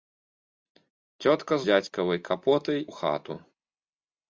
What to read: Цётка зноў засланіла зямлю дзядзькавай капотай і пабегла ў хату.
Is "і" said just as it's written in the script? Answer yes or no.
no